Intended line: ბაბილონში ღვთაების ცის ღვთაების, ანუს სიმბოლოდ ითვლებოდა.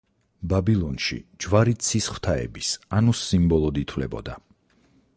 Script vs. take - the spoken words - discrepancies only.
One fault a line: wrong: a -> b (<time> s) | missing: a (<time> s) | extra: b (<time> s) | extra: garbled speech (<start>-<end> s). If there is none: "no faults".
wrong: ღვთაების -> ჯვარი (1.4 s)